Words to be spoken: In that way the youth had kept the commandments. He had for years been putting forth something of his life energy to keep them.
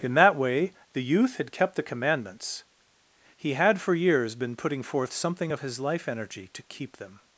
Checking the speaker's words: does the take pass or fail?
pass